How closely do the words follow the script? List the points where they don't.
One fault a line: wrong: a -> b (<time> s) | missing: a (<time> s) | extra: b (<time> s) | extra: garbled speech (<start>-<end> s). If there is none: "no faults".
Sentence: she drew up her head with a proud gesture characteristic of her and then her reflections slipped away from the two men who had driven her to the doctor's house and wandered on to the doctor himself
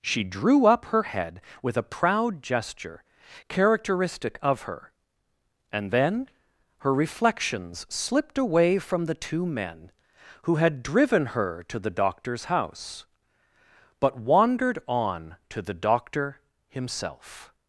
wrong: and -> but (14.0 s)